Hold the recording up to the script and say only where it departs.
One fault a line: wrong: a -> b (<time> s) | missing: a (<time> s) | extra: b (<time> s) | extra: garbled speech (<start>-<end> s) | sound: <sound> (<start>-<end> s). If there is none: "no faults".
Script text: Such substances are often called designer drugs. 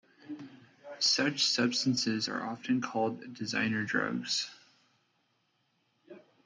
no faults